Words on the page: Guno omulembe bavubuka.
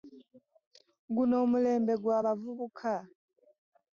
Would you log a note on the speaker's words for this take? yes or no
yes